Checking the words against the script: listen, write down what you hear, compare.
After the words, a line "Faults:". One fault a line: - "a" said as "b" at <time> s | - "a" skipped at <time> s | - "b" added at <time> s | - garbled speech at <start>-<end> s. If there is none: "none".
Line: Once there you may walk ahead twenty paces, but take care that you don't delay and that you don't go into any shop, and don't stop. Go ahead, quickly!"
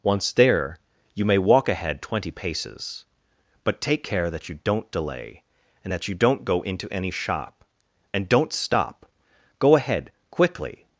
Once there you may walk ahead twenty paces, but take care that you don't delay and that you don't go into any shop, and don't stop. Go ahead, quickly!"
Faults:
none